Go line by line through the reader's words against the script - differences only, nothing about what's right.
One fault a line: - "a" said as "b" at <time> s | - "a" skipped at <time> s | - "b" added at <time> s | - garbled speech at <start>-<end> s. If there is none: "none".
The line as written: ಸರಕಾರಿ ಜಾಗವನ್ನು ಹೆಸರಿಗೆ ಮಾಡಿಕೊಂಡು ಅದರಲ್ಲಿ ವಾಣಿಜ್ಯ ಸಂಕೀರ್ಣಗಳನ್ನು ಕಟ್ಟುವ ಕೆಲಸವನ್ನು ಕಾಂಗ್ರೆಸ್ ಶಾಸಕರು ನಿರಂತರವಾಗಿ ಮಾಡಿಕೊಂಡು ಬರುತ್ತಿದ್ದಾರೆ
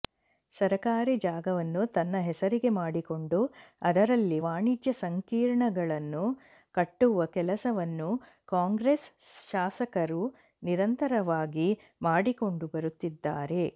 - "ತನ್ನ" added at 1.9 s